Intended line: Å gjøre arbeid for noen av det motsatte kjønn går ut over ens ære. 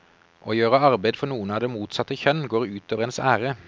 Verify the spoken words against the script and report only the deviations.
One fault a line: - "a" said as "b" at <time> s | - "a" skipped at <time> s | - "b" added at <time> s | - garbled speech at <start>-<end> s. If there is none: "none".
none